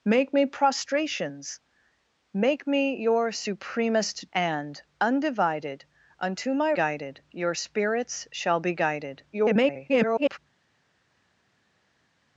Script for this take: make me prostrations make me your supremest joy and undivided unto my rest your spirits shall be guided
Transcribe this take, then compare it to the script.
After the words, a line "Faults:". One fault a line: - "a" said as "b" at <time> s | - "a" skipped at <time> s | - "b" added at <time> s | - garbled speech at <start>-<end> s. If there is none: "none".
make me prostrations make me your supremest and undivided unto my guided your spirits shall be guided [garbled]
Faults:
- "joy" skipped at 4.3 s
- "rest" said as "guided" at 6.7 s
- garbled speech at 9.3-10.4 s